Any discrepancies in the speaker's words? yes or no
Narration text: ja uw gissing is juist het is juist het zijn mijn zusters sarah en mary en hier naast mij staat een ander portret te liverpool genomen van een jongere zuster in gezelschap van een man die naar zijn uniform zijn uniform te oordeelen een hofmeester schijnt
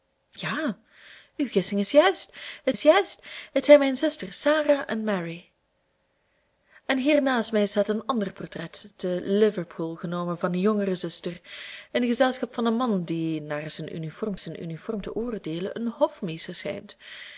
no